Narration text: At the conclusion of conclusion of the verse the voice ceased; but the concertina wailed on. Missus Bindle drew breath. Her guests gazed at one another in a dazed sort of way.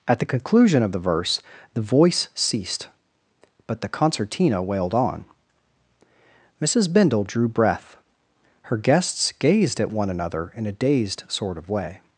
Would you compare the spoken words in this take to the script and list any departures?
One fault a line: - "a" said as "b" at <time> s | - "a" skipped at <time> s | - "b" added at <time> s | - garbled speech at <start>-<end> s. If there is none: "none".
- "conclusion of" skipped at 0.9 s